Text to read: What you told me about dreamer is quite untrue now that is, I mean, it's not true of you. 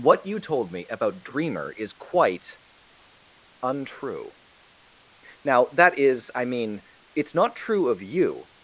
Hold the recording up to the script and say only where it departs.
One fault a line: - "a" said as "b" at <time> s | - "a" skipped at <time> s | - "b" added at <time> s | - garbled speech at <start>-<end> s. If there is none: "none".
none